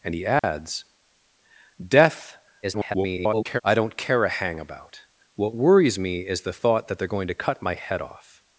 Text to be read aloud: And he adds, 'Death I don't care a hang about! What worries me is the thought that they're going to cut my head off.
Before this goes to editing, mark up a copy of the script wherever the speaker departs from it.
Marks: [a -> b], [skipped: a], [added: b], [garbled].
And he adds, 'Death [garbled] I don't care a hang about! What worries me is the thought that they're going to cut my head off.